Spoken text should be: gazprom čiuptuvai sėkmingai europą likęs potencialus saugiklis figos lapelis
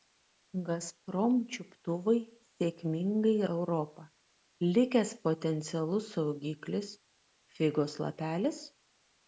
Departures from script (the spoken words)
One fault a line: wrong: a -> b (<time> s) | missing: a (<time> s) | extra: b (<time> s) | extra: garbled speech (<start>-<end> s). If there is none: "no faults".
no faults